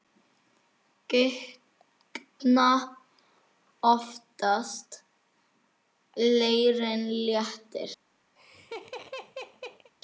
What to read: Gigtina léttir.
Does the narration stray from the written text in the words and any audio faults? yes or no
yes